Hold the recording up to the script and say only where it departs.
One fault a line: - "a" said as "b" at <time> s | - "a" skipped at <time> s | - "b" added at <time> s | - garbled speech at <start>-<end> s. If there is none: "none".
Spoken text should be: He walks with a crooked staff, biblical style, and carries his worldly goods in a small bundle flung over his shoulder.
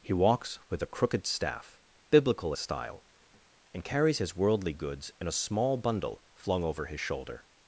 none